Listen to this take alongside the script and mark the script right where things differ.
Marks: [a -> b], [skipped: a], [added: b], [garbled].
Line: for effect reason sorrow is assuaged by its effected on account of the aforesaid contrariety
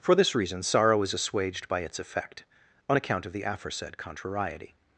for [effect -> this] reason sorrow is assuaged by its [effected -> effect] on account of the aforesaid contrariety